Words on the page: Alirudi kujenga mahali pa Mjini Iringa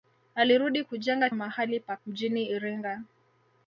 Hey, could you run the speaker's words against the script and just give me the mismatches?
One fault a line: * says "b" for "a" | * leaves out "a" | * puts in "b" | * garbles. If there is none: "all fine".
all fine